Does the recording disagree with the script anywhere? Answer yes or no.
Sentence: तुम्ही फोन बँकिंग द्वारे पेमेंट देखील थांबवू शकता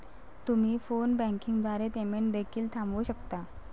no